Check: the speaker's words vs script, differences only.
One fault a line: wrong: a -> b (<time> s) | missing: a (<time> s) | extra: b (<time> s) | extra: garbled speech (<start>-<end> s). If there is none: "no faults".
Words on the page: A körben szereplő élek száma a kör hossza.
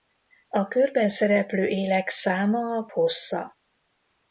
missing: kör (2.9 s)